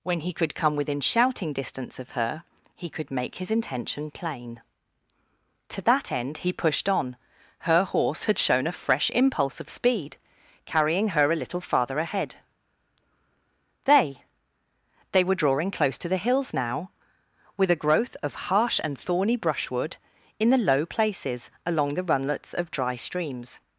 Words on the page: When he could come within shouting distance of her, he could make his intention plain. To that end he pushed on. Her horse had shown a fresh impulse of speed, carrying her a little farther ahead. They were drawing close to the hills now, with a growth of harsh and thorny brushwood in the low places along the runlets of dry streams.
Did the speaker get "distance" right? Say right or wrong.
right